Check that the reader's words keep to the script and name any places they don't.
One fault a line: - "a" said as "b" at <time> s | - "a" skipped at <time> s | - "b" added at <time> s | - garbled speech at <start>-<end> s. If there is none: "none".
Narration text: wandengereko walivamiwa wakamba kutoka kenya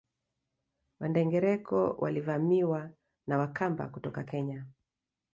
- "na" added at 3.3 s